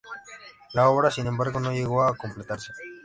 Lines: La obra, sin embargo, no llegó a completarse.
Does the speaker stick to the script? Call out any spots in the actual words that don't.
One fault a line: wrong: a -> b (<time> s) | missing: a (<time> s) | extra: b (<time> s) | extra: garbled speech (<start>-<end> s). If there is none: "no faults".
no faults